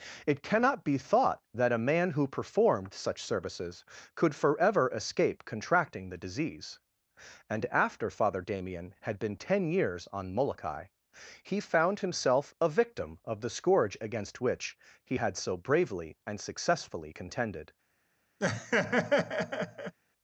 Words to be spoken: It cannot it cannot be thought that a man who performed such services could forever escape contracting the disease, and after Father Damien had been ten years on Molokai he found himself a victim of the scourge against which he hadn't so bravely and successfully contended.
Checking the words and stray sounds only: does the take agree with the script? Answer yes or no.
no